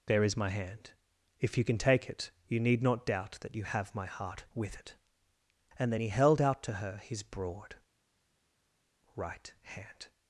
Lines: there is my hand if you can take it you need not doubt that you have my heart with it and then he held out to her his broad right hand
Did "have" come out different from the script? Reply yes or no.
no